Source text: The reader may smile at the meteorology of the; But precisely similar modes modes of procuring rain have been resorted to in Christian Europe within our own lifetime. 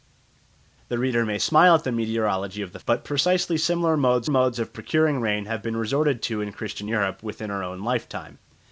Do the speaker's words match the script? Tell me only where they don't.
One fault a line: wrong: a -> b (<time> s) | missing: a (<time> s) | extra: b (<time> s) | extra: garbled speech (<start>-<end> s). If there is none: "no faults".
no faults